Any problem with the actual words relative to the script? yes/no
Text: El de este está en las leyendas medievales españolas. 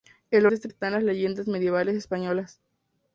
no